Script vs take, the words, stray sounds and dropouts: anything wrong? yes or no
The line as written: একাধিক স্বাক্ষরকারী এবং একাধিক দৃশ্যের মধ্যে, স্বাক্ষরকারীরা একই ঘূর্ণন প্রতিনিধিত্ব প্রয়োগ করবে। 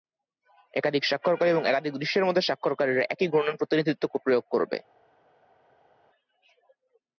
no